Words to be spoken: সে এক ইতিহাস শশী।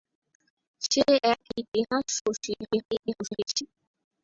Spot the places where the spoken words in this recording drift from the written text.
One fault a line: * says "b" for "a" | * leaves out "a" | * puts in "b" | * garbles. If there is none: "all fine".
* garbles